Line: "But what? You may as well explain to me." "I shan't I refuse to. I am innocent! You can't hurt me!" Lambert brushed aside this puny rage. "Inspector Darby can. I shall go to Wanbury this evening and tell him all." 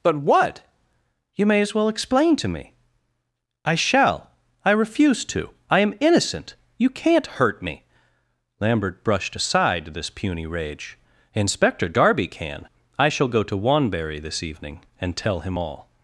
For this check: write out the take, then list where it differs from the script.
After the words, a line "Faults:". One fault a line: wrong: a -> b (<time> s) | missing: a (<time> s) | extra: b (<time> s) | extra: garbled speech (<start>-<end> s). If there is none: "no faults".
"But what? You may as well explain to me." "I shall I refuse to. I am innocent! You can't hurt me!" Lambert brushed aside this puny rage. "Inspector Darby can. I shall go to Wanbury this evening and tell him all."
Faults:
wrong: shan't -> shall (3.8 s)